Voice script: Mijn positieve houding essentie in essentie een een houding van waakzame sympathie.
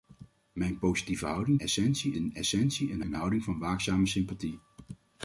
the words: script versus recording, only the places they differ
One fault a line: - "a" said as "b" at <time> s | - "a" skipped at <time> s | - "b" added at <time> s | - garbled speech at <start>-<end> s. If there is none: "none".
none